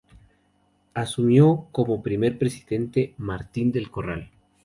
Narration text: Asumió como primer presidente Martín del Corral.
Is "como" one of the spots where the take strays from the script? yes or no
no